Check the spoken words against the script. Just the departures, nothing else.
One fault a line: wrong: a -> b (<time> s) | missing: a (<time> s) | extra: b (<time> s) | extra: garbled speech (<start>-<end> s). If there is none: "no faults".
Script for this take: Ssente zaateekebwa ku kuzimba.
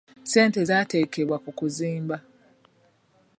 no faults